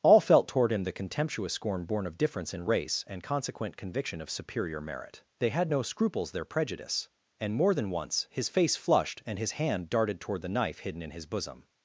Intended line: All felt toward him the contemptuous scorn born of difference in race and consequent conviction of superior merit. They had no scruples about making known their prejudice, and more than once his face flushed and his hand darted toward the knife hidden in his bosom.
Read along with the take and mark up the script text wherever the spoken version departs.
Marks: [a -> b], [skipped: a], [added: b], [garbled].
All felt toward him the contemptuous scorn born of difference in race and consequent conviction of superior merit. They had no scruples [skipped: about making known] their prejudice, and more than once his face flushed and his hand darted toward the knife hidden in his bosom.